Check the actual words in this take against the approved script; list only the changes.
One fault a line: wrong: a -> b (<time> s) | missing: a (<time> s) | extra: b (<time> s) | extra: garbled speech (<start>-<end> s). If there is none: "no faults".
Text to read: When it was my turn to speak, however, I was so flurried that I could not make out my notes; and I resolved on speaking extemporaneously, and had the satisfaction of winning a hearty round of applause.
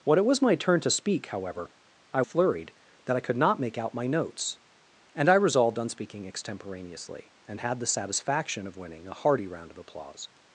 missing: was so (2.2 s)